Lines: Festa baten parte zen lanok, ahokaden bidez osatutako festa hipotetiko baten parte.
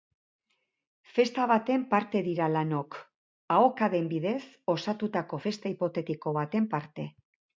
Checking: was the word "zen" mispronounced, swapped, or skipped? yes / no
yes